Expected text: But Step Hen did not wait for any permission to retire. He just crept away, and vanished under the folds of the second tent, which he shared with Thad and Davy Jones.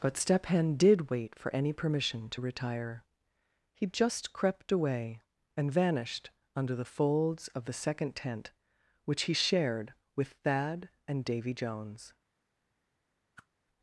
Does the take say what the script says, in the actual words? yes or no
no